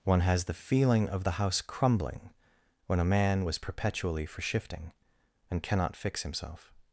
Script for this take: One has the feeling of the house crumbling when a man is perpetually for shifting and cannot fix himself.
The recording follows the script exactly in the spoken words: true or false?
false